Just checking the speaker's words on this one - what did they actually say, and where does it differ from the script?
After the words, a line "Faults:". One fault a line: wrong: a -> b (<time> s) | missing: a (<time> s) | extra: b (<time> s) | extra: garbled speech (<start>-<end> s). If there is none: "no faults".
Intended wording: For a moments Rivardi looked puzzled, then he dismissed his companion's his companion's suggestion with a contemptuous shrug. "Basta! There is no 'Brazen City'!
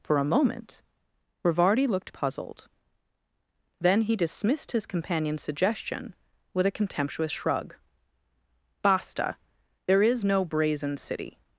For a moment Rivardi looked puzzled, then he dismissed his companion's suggestion with a contemptuous shrug. "Basta! There is no 'Brazen City'!
Faults:
wrong: moments -> moment (0.2 s)
missing: his companion's (5.4 s)